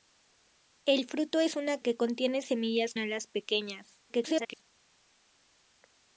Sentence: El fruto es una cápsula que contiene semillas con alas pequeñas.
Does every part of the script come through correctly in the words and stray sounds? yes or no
no